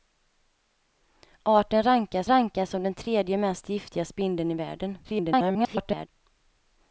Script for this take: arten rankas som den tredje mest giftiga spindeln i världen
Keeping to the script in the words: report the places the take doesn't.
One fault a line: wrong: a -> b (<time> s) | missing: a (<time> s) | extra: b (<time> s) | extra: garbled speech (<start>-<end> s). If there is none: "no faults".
extra: rankas (2.3 s)
extra: garbled speech (5.0-6.1 s)